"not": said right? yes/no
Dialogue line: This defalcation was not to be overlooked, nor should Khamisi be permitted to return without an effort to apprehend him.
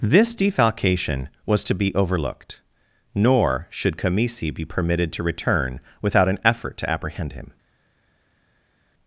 no